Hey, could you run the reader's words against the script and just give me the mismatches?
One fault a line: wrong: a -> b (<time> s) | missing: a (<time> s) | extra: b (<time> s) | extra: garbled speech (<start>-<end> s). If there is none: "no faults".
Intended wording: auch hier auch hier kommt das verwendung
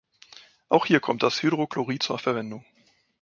wrong: auch hier kommt das -> kommt das hydrochlorid zur (1.0 s)